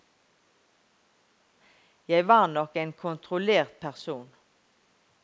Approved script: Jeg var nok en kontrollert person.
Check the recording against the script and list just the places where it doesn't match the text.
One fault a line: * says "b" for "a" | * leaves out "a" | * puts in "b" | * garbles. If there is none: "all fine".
all fine